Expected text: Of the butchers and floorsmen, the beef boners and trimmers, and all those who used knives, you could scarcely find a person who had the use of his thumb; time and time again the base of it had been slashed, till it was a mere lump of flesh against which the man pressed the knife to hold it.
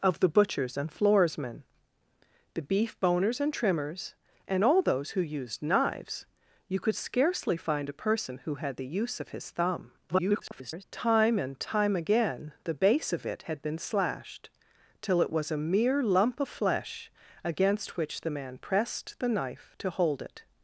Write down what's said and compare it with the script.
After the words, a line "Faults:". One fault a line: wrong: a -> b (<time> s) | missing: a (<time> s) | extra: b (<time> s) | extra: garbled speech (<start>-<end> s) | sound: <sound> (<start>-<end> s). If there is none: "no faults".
Of the butchers and floorsmen, the beef boners and trimmers, and all those who used knives, you could scarcely find a person who had the use of his thumb; [garbled] time and time again the base of it had been slashed, till it was a mere lump of flesh against which the man pressed the knife to hold it.
Faults:
extra: garbled speech (10.1-10.8 s)